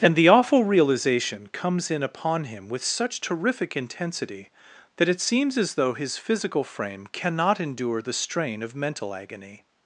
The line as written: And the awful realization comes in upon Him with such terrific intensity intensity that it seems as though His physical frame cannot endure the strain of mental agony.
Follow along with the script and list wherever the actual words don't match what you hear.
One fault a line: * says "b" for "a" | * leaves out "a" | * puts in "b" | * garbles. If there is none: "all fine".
* leaves out "intensity"